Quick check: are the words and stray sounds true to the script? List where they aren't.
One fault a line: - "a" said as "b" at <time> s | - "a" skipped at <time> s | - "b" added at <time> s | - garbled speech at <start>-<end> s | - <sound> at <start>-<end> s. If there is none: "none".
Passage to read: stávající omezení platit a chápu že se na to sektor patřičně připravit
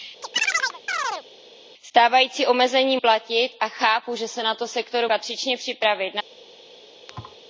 - chirp at 0.2-1.3 s
- thud at 7.1-7.4 s